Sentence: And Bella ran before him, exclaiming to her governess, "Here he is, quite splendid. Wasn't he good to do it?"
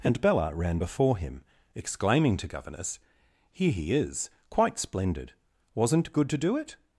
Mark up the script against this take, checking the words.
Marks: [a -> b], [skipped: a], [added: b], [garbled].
And Bella ran before him, exclaiming to [skipped: her] governess, "Here he is, quite splendid. Wasn't [skipped: he] good to do it?"